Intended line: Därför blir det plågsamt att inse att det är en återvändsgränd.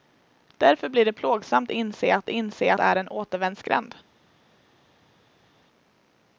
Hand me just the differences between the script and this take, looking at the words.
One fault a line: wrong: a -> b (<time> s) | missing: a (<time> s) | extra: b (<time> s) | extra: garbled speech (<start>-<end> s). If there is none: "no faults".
missing: att (1.7 s)
wrong: det -> inse (2.3 s)